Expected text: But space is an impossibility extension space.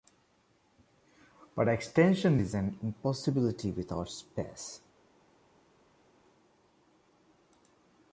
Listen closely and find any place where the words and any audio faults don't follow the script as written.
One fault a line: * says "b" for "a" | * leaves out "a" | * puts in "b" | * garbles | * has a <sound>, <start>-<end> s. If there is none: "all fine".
* says "extension" for "space"
* says "without" for "extension"